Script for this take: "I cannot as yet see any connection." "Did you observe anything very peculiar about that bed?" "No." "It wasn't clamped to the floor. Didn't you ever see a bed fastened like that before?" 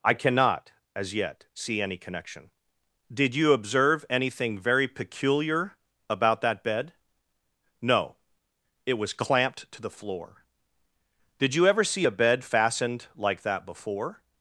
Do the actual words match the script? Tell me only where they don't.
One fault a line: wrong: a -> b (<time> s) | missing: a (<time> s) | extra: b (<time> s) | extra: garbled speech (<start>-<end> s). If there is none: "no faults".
wrong: wasn't -> was (8.9 s)
wrong: Didn't -> Did (11.4 s)